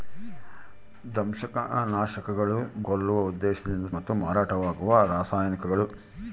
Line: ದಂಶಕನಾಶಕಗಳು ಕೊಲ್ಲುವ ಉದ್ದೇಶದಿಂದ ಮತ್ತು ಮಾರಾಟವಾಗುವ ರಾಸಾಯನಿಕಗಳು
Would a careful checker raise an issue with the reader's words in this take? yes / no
no